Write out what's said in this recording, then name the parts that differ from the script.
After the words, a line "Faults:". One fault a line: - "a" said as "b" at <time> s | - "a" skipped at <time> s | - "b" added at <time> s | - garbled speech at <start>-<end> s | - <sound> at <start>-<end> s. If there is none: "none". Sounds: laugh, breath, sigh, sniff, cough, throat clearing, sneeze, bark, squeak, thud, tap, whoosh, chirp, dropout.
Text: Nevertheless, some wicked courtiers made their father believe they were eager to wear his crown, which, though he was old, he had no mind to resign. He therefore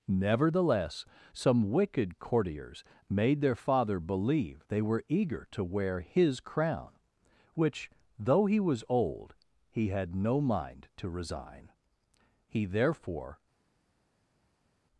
Nevertheless, some wicked courtiers made their father believe they were eager to wear his crown, which, though he was old, he had no mind to resign. He therefore
Faults:
none